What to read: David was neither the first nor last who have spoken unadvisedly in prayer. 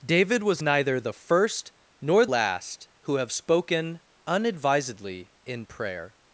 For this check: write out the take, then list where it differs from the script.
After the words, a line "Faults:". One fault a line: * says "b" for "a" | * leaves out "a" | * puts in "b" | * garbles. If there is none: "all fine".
David was neither the first nor last who have spoken unadvisedly in prayer.
Faults:
all fine